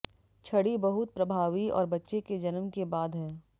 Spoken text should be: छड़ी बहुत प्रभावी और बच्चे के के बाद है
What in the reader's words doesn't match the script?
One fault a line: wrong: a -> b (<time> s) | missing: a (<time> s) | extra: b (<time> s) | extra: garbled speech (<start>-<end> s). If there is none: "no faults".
extra: जन्म (2.4 s)